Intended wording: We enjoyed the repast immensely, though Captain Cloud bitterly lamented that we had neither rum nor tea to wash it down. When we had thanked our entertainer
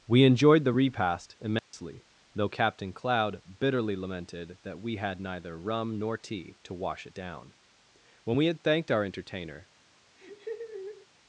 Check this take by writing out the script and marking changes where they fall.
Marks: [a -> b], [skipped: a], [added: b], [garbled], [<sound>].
We enjoyed the repast immensely, [dropout] though Captain Cloud bitterly lamented that we had neither rum nor tea to wash it down. When we had thanked our entertainer [laugh]